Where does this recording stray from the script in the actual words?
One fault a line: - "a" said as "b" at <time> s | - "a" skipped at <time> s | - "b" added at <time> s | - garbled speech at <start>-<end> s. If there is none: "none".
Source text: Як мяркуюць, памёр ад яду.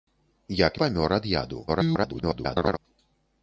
- "мяркуюць" skipped at 0.8 s
- garbled speech at 1.7-2.8 s